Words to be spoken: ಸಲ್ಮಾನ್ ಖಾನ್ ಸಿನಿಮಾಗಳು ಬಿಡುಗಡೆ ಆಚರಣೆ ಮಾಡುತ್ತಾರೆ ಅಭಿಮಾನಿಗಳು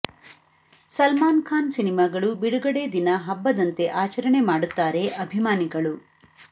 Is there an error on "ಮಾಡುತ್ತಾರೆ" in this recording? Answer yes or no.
no